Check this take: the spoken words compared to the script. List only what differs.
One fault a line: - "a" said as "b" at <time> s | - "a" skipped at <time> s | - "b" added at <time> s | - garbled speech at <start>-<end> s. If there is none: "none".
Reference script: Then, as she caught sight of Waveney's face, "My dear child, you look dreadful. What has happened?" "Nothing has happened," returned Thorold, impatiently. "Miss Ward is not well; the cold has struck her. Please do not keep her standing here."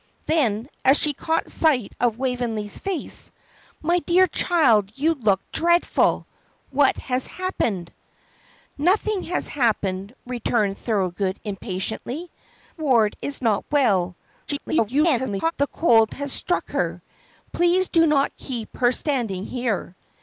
- "Miss" skipped at 12.3 s
- garbled speech at 14.5-15.5 s